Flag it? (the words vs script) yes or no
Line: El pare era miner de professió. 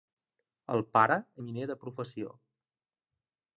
yes